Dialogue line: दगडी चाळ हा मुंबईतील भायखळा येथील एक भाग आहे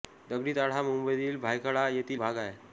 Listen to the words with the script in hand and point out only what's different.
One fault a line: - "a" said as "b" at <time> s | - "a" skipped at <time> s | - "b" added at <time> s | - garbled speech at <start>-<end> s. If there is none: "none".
- "एक" skipped at 2.2 s